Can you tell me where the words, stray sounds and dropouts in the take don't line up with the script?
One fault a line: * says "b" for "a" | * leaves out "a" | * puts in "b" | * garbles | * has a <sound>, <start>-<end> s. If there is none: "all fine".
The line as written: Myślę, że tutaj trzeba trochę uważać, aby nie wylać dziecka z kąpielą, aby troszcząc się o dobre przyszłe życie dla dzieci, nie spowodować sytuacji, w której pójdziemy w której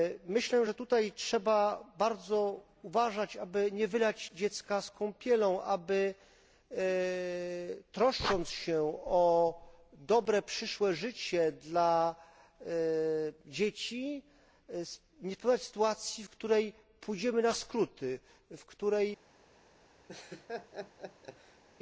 * says "bardzo" for "trochę"
* puts in "na skróty"
* has a laugh, 20.1-21.6 s